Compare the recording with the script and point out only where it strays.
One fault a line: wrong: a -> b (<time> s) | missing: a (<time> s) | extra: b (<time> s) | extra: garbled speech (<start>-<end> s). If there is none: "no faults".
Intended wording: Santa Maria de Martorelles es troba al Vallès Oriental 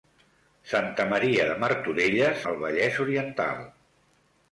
missing: es troba (2.4 s)